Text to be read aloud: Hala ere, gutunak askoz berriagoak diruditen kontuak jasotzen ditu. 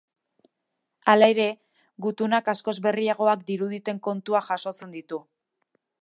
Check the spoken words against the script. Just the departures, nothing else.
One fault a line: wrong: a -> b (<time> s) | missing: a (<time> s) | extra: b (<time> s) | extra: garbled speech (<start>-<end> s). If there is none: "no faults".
no faults